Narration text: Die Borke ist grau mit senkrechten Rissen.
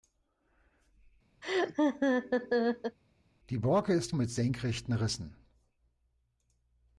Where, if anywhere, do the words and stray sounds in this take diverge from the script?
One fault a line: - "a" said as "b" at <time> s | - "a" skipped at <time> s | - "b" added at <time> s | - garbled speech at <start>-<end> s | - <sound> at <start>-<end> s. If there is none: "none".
- laugh at 1.4-3.0 s
- "grau" skipped at 4.1 s